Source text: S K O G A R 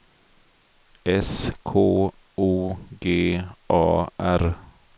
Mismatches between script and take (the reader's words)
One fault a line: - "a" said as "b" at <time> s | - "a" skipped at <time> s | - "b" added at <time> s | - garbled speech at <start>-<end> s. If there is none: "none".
none